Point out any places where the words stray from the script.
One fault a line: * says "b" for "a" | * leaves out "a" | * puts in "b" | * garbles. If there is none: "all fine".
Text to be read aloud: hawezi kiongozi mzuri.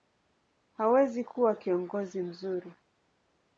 * puts in "kuwa"